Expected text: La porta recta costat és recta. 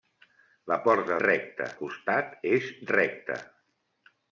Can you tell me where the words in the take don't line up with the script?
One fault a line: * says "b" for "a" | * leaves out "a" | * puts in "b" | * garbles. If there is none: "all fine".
all fine